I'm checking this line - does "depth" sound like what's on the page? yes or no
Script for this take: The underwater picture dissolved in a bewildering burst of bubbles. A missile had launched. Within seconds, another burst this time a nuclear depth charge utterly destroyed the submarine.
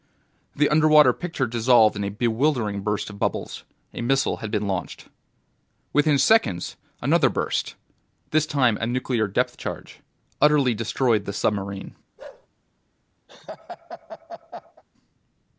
yes